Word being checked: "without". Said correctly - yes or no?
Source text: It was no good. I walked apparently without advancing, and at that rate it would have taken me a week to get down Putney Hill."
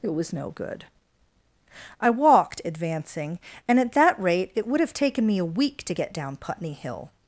no